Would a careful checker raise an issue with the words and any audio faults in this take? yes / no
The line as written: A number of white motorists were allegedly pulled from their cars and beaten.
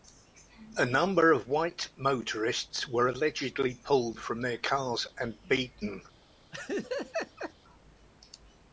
yes